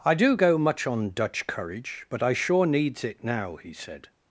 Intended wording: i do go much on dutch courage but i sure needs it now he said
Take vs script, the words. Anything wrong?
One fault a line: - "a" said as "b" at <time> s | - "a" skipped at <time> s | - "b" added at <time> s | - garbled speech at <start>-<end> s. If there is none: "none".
none